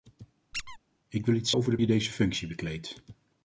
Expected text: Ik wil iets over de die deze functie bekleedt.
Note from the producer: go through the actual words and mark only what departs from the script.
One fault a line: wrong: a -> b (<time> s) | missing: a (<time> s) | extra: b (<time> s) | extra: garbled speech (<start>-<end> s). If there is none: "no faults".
no faults